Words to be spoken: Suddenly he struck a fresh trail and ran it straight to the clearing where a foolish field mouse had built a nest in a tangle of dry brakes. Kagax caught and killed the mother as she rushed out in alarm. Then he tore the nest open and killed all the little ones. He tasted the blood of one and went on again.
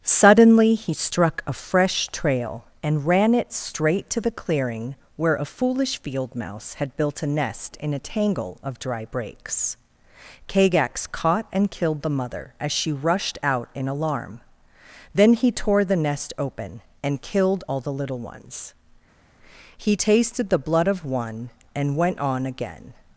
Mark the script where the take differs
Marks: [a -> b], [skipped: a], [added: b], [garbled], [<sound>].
Suddenly he struck a fresh trail and ran it straight to the clearing where a foolish field mouse had built a nest in a tangle of dry brakes. Kagax caught and killed the mother as she rushed out in alarm. Then he tore the nest open and killed all the little ones. He tasted the blood of one and went on again.